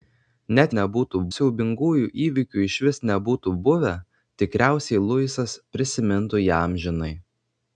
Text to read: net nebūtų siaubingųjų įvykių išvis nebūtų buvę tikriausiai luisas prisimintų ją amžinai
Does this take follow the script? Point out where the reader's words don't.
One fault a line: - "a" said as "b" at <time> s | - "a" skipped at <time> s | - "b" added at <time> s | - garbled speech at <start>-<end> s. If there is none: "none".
none